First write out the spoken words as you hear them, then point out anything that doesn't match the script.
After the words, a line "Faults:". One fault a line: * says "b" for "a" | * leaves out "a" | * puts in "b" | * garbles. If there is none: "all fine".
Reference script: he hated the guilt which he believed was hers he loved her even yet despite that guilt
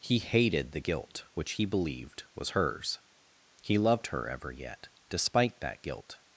he hated the guilt which he believed was hers he loved her ever yet despite that guilt
Faults:
* says "ever" for "even"